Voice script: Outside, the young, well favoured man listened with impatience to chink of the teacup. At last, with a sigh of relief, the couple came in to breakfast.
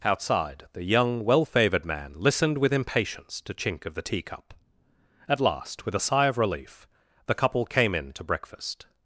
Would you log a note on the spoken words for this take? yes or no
no